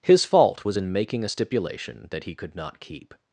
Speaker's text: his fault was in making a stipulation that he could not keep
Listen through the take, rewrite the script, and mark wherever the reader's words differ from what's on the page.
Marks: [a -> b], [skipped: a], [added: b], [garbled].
his fault was in making a stipulation that he could not keep